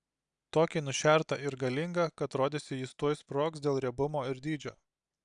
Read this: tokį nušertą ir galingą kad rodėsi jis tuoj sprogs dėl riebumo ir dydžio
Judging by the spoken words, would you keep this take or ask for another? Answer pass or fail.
pass